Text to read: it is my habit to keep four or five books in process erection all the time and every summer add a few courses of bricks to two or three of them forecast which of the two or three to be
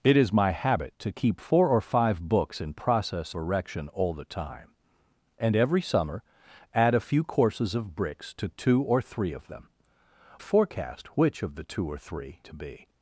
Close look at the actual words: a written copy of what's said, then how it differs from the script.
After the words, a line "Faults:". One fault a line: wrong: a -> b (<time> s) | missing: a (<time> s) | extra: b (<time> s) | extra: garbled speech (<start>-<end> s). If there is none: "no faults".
it is my habit to keep four or five books in process erection all the time and every summer add a few courses of bricks to two or three of them forecast which of the two or three to be
Faults:
no faults